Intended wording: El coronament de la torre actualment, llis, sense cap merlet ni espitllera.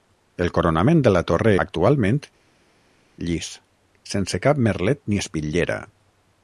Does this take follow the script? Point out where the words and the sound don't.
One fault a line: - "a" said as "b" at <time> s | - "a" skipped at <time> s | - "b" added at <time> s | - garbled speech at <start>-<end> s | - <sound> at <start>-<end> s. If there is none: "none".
none